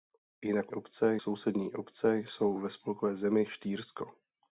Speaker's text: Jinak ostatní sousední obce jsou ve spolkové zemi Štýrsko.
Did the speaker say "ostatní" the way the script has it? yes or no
no